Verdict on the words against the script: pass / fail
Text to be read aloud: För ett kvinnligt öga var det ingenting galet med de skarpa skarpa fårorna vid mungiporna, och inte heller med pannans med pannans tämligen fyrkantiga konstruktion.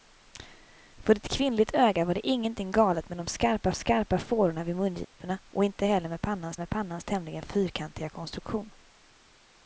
pass